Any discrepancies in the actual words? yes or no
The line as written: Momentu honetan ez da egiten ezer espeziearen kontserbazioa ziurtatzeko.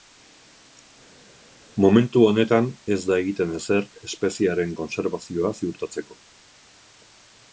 no